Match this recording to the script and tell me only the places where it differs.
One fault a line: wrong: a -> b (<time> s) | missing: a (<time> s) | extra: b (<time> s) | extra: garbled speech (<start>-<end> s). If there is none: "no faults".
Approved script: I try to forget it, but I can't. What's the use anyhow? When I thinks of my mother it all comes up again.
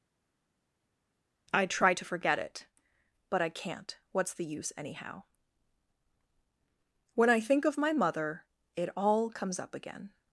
wrong: thinks -> think (7.4 s)